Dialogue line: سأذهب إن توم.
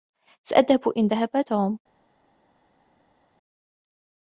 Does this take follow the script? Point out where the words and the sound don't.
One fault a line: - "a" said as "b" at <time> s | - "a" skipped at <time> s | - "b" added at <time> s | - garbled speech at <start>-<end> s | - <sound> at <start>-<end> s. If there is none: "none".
- "ذهب" added at 1.0 s